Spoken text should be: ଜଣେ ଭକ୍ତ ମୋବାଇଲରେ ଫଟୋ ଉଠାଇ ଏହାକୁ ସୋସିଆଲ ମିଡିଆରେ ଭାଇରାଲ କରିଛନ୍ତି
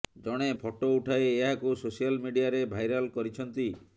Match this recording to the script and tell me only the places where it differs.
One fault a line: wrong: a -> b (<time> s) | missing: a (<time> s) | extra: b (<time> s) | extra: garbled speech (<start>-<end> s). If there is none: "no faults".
missing: ଭକ୍ତ ମୋବାଇଲରେ (0.5 s)